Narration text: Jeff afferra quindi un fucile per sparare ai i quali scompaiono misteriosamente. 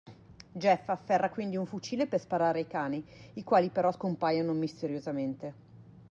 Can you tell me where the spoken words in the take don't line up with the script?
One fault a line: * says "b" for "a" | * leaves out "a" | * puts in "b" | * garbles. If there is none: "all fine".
* puts in "cani"
* puts in "però"